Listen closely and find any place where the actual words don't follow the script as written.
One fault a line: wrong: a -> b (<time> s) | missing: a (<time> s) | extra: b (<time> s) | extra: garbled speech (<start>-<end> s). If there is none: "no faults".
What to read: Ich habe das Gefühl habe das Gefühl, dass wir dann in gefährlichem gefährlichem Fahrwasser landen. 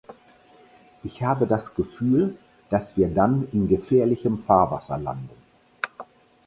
missing: habe das Gefühl (2.4 s)
missing: gefährlichem (4.4 s)